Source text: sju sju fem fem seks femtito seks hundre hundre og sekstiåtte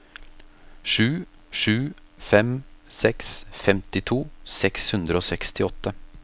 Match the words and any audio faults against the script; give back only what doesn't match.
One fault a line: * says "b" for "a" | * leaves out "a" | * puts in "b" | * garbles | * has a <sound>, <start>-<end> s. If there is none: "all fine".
* leaves out "fem"
* leaves out "hundre"